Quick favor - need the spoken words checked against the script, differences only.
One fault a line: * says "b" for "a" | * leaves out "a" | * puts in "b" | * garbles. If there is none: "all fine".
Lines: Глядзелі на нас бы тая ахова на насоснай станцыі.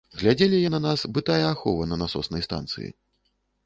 all fine